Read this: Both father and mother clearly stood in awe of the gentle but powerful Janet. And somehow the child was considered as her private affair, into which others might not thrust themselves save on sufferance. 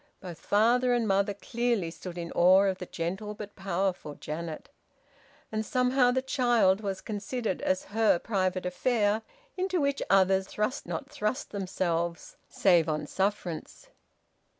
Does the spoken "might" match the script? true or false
false